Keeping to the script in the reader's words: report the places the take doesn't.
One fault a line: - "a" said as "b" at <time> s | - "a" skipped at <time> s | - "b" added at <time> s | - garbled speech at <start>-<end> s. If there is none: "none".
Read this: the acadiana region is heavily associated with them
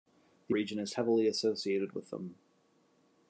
- "acadiana" skipped at 0.6 s